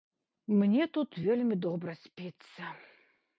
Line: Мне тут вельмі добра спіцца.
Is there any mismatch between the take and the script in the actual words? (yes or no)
no